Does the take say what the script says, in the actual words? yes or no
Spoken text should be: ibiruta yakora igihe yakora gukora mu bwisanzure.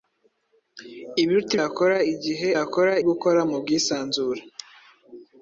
yes